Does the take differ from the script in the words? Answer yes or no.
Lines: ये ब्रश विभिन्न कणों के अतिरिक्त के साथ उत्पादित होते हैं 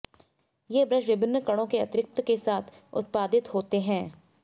no